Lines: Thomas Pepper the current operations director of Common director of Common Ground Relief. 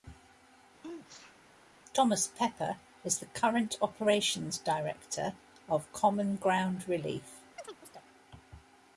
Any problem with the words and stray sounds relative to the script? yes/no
yes